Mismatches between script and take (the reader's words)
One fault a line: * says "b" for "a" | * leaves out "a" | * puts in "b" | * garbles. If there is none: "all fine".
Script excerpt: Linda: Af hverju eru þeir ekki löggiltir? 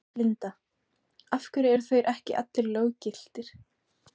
* puts in "allir"